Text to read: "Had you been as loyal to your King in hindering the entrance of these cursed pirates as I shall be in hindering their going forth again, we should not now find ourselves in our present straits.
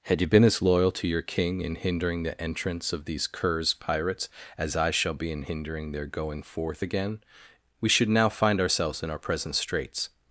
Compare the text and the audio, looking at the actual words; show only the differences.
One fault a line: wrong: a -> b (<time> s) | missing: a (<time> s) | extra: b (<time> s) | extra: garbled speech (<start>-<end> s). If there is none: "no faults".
wrong: cursed -> curs (3.3 s)
missing: not (8.1 s)